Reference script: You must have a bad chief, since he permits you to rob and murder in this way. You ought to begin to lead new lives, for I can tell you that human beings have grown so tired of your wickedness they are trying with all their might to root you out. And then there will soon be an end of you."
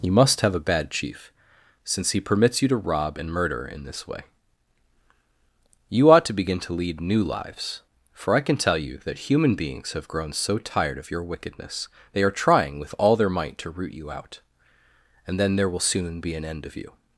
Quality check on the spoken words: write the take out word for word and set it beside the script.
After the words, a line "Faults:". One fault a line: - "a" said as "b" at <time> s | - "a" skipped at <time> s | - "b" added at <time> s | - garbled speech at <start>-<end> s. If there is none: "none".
You must have a bad chief, since he permits you to rob and murder in this way. You ought to begin to lead new lives, for I can tell you that human beings have grown so tired of your wickedness they are trying with all their might to root you out. And then there will soon be an end of you."
Faults:
none